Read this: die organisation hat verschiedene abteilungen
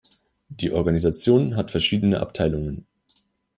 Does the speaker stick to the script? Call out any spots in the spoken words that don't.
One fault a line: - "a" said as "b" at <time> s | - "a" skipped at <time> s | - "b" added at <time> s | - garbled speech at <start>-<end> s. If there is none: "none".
none